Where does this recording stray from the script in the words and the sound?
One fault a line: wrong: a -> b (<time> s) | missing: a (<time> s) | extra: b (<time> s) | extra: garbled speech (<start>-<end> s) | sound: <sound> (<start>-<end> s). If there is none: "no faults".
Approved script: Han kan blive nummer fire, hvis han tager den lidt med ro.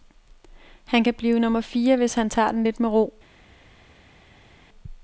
no faults